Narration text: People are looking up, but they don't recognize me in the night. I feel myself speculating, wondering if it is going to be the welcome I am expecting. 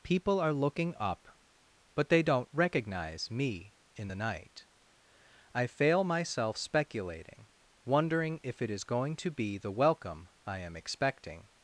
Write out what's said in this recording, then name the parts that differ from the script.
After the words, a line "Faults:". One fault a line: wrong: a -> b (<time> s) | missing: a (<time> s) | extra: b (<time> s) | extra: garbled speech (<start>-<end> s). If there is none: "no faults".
People are looking up, but they don't recognize me in the night. I fail myself speculating, wondering if it is going to be the welcome I am expecting.
Faults:
wrong: feel -> fail (5.7 s)